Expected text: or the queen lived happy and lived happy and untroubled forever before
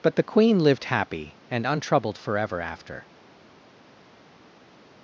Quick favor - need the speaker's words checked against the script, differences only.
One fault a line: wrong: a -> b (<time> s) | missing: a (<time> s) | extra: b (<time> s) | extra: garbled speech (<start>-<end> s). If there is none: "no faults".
wrong: or -> but (0.0 s)
missing: lived happy and (1.6 s)
wrong: before -> after (2.6 s)